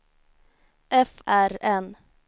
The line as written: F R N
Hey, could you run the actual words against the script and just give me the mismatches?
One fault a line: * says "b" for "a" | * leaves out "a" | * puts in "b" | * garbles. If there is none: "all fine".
all fine